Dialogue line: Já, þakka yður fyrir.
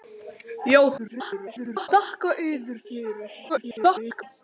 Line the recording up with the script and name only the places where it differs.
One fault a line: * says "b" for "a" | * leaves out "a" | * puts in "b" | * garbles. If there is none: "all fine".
* garbles
* garbles